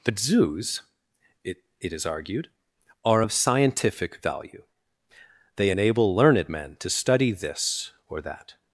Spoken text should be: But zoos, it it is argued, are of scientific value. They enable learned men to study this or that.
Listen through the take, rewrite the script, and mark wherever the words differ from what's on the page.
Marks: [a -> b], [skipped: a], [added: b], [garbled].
But zoos, it it is argued, are of scientific value. They enable learned men to study this or that.